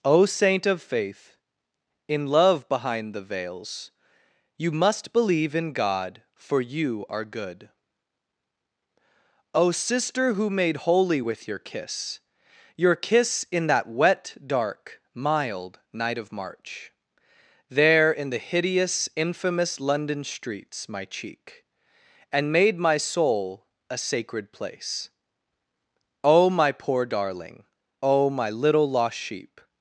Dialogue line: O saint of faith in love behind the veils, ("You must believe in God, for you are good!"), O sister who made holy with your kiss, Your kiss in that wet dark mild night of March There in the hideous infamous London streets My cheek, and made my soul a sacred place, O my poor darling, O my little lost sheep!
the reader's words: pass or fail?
pass